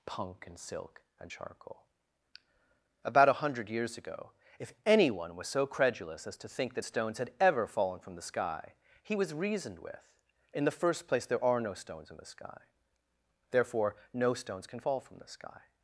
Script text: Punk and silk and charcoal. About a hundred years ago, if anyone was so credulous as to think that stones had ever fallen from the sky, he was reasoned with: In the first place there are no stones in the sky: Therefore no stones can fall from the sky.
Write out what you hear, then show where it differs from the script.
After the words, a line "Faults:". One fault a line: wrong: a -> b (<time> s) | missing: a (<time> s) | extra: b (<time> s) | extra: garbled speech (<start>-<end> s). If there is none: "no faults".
Punk and silk and charcoal. About a hundred years ago, if anyone was so credulous as to think that stones had ever fallen from the sky, he was reasoned with: In the first place there are no stones in the sky: Therefore no stones can fall from the sky.
Faults:
no faults